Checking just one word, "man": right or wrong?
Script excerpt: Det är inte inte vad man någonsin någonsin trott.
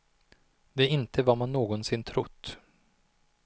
right